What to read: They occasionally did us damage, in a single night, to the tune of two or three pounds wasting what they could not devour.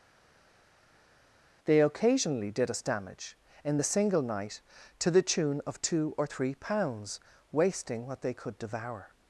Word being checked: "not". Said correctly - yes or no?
no